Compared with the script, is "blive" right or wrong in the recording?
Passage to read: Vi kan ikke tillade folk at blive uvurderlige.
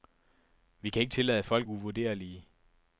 wrong